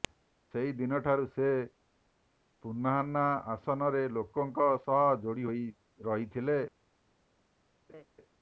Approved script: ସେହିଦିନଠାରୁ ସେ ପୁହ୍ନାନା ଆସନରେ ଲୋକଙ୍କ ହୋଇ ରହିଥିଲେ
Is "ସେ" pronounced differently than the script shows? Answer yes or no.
no